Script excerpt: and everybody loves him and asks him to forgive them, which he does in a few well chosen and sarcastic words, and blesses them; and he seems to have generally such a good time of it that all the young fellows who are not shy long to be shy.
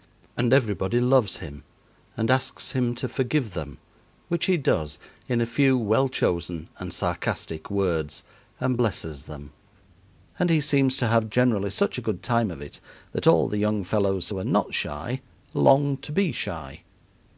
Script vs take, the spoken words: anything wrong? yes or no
no